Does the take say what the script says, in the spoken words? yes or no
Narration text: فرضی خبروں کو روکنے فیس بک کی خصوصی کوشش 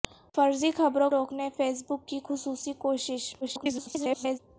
no